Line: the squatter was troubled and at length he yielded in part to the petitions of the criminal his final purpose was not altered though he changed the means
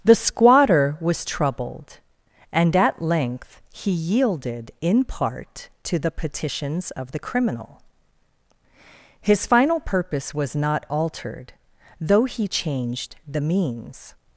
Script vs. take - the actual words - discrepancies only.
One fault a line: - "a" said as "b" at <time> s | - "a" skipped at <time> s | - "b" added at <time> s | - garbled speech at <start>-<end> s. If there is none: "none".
none